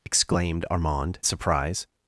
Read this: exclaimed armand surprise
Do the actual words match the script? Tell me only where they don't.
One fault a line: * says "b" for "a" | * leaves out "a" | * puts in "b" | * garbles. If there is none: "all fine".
all fine